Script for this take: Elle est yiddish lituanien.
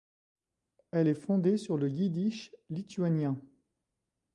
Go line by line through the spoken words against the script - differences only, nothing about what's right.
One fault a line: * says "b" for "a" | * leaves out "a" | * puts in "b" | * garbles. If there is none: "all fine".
* puts in "fondée sur le"